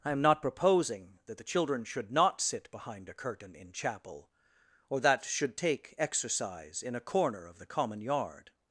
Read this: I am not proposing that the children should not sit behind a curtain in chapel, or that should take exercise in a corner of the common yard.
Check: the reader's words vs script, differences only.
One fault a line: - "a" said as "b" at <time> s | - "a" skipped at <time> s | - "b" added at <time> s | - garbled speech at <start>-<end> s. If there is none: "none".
none